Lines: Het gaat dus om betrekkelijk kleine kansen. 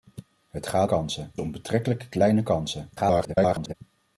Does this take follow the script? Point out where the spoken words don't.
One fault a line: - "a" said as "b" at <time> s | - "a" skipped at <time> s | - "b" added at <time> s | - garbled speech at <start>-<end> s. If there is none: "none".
- "dus" said as "kansen" at 0.8 s
- garbled speech at 3.0-3.7 s